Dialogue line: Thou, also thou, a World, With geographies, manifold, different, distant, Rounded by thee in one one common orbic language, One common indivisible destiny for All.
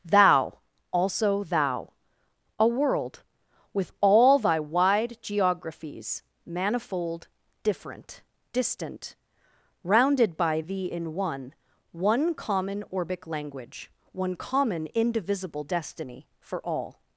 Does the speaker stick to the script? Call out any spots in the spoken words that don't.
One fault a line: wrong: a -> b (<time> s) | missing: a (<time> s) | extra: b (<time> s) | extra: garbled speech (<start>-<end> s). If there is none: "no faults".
extra: all thy wide (4.0 s)